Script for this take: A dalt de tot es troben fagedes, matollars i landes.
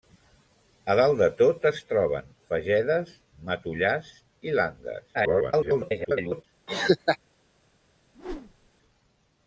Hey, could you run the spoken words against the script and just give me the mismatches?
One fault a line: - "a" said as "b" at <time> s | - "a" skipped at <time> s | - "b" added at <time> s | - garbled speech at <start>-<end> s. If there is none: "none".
- garbled speech at 5.1-6.4 s